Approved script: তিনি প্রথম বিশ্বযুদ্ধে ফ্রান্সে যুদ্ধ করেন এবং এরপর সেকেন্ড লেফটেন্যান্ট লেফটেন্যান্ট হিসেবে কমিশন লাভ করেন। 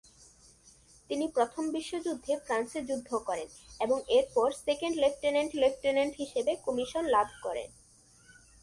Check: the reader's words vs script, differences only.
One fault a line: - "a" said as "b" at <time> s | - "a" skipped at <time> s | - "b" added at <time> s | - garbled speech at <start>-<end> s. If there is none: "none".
none